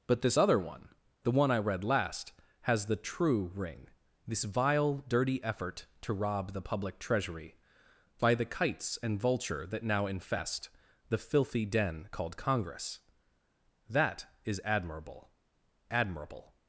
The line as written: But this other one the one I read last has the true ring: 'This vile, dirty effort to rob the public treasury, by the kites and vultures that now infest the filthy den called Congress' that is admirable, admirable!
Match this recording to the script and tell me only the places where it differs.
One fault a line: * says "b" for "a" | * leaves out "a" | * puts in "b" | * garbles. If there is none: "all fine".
* says "vulture" for "vultures"